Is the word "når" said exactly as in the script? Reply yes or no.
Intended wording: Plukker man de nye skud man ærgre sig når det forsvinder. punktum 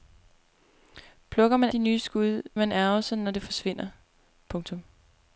yes